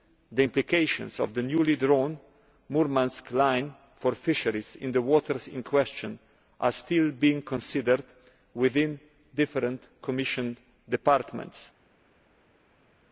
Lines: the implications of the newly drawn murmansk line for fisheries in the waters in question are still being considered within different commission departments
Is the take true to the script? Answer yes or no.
yes